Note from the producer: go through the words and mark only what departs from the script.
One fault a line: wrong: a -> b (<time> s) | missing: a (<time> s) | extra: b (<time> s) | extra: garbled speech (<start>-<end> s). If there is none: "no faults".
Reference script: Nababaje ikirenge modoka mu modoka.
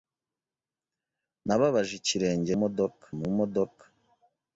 no faults